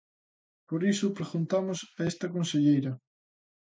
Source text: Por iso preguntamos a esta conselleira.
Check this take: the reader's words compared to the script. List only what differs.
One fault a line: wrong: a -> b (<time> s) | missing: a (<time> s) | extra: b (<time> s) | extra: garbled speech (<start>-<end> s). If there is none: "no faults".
no faults